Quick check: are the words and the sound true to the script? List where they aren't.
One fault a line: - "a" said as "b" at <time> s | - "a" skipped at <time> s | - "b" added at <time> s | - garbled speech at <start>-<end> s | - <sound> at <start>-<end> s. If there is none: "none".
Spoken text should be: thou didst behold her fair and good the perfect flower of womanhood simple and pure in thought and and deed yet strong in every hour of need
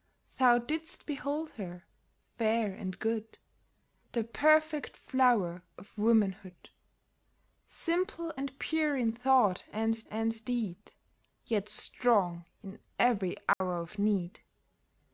- dropout at 13.5-13.6 s